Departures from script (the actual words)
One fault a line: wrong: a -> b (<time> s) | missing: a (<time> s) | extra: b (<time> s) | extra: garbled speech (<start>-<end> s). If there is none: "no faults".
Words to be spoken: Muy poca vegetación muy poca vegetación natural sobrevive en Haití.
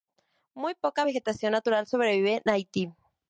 missing: muy poca vegetación (1.5 s)